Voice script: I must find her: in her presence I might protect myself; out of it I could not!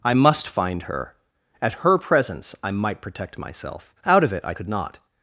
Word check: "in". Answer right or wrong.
wrong